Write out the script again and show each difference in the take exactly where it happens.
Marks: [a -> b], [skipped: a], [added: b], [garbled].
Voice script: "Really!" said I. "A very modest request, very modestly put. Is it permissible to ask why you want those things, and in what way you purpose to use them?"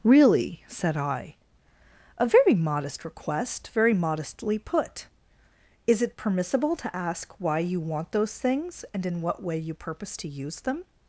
"Really!" said I. "A very modest request, very modestly put. Is it permissible to ask why you want those things, and in what way you purpose to use them?"